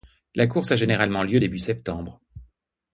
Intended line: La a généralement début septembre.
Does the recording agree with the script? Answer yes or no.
no